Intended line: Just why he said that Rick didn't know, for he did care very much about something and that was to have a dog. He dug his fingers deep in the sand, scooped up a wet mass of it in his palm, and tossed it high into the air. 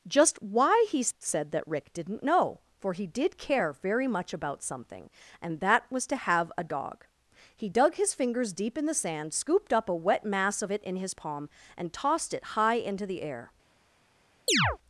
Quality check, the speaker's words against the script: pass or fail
pass